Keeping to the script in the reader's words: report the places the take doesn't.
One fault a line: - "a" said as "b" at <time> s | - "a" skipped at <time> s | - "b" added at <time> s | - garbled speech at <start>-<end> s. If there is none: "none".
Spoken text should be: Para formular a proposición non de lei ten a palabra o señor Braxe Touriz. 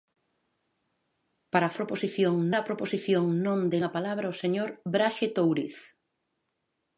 - "formular" said as "proposición" at 1.8 s
- "lei ten" skipped at 3.8 s